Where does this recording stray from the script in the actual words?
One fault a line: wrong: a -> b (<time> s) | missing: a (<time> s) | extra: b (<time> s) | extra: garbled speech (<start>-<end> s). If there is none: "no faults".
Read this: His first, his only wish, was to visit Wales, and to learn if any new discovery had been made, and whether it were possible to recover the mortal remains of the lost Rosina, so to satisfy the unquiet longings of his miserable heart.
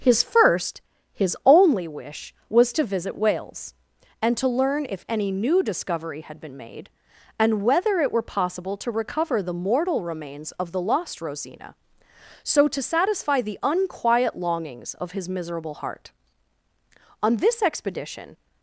extra: On this expedition (17.2 s)